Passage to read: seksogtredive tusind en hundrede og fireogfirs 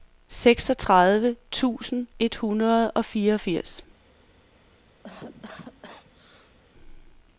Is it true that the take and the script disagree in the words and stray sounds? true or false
true